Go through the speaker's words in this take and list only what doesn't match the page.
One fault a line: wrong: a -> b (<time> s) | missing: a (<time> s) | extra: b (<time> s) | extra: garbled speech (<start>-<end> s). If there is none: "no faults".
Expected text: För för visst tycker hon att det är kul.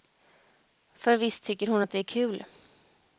missing: för (1.2 s)